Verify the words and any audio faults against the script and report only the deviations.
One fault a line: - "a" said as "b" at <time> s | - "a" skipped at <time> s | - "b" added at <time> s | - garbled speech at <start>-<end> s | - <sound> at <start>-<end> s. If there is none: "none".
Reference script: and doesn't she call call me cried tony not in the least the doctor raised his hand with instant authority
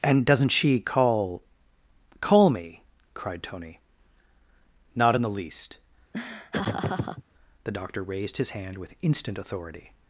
- laugh at 6.1-7.2 s